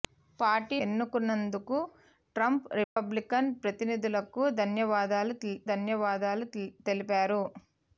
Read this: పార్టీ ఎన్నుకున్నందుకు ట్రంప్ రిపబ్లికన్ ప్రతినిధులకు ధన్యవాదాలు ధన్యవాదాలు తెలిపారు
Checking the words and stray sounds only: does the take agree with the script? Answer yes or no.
no